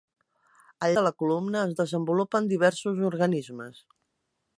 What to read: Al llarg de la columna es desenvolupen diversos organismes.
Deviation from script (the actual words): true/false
true